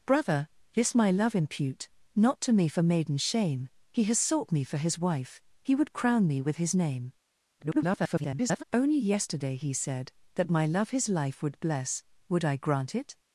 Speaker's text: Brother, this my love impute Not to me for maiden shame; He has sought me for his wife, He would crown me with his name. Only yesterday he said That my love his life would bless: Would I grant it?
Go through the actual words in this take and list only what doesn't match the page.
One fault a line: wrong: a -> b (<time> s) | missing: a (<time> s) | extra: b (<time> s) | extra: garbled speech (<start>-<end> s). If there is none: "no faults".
extra: garbled speech (7.6-8.6 s)